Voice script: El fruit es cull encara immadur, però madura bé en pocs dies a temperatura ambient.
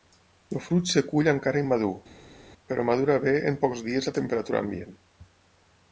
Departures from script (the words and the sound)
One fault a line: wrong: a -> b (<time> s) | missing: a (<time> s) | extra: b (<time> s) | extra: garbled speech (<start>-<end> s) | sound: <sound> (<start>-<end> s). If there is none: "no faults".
no faults